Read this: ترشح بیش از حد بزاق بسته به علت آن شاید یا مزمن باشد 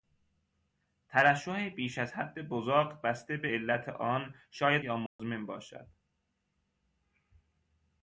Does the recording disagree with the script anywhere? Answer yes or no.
no